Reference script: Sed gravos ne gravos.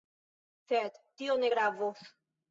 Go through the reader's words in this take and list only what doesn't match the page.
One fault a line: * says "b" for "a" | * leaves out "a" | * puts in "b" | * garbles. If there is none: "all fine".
* says "tio" for "gravos"